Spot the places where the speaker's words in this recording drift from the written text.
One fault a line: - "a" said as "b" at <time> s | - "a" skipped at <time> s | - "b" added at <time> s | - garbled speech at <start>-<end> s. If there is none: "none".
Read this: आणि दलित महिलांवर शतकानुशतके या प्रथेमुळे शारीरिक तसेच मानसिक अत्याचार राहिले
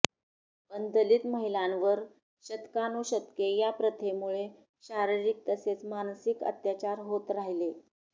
- "आणि" said as "पण" at 0.7 s
- "होत" added at 7.0 s